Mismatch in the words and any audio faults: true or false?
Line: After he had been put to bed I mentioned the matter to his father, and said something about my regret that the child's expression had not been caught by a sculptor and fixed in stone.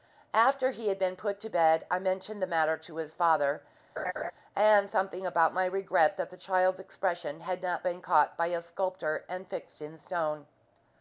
true